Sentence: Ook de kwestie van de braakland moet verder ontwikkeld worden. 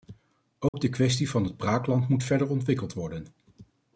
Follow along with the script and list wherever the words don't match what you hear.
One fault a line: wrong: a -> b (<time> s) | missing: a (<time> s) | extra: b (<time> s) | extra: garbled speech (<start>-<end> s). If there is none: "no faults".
wrong: de -> het (1.4 s)